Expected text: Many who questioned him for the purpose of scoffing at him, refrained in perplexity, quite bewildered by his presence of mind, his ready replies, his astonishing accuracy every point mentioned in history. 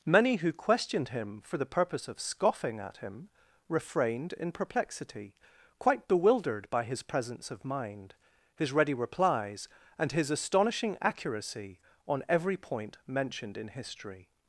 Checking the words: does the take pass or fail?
fail